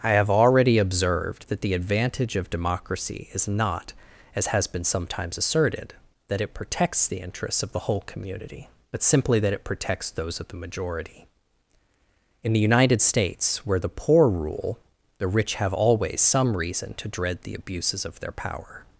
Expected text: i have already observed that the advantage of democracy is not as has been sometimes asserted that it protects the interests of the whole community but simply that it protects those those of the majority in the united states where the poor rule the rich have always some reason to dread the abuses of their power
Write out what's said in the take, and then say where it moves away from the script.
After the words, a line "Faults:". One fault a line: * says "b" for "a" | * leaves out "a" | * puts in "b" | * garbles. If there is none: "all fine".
i have already observed that the advantage of democracy is not as has been sometimes asserted that it protects the interests of the whole community but simply that it protects those of the majority in the united states where the poor rule the rich have always some reason to dread the abuses of their power
Faults:
* leaves out "those"